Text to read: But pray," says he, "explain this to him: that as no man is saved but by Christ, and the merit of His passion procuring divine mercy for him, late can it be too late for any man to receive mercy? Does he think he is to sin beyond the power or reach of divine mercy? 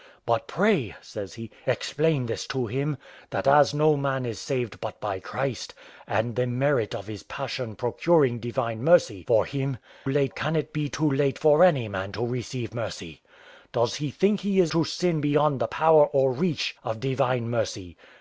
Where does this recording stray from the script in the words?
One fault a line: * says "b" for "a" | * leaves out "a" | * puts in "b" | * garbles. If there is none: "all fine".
all fine